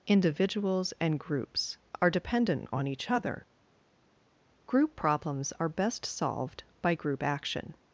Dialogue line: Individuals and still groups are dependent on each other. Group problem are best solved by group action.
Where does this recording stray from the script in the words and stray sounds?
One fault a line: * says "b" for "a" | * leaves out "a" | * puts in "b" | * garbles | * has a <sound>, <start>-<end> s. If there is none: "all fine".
* leaves out "still"
* says "problems" for "problem"